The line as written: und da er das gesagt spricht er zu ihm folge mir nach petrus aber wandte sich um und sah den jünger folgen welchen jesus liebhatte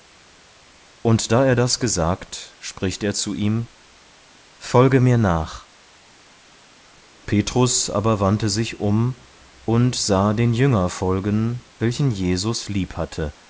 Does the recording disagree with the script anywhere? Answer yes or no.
no